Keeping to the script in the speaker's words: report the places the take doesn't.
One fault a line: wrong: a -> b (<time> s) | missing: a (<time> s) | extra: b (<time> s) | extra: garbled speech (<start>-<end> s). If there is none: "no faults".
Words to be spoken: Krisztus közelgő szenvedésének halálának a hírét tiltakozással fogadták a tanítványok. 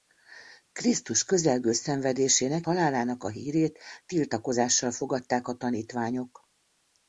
no faults